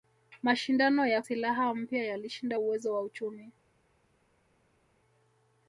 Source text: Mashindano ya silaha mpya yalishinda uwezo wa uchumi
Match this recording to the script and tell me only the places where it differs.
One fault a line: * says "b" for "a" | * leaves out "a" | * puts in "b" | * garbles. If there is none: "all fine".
all fine